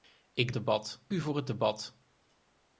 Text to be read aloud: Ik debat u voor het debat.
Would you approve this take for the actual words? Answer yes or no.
yes